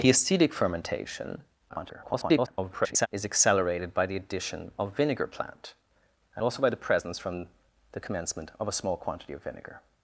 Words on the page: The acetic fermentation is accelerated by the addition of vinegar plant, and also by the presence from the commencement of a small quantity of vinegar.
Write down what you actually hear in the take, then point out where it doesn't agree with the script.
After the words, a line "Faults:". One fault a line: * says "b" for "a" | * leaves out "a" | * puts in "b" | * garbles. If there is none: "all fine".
The acetic fermentation [garbled] is accelerated by the addition of vinegar plant, and also by the presence from the commencement of a small quantity of vinegar.
Faults:
* garbles